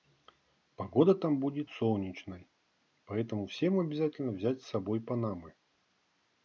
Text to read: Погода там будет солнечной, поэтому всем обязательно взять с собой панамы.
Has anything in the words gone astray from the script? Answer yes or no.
no